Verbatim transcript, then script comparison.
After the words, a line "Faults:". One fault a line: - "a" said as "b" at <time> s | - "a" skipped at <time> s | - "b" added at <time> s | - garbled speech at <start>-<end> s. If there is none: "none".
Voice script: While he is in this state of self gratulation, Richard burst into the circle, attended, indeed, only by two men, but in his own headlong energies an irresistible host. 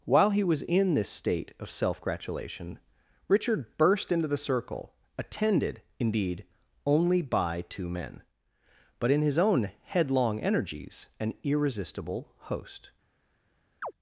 While he was in this state of self gratulation, Richard burst into the circle, attended, indeed, only by two men, but in his own headlong energies an irresistible host.
Faults:
- "is" said as "was" at 0.4 s